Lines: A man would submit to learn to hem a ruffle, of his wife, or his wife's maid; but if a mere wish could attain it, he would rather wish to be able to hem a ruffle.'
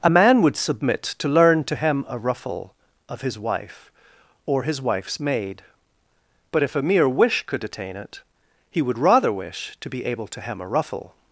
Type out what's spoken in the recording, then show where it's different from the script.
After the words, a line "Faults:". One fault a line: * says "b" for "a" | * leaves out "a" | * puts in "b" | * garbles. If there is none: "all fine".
A man would submit to learn to hem a ruffle, of his wife, or his wife's maid; but if a mere wish could attain it, he would rather wish to be able to hem a ruffle.'
Faults:
all fine